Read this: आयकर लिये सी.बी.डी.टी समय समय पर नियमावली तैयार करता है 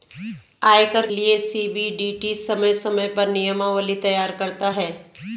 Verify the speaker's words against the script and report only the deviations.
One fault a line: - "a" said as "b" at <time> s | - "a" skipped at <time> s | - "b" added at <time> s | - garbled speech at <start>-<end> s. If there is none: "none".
none